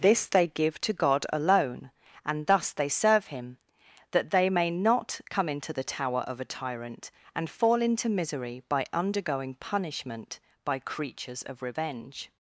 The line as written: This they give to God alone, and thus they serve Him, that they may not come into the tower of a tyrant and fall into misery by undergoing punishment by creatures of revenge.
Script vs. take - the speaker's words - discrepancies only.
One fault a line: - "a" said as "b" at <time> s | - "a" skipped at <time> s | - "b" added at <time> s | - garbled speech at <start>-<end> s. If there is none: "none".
none